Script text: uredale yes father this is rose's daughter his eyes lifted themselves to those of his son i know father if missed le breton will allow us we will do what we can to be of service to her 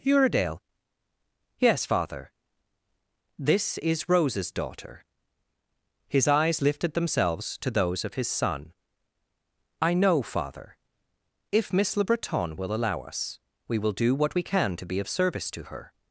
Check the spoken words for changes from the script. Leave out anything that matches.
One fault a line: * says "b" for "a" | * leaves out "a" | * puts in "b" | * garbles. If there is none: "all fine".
* says "miss" for "missed"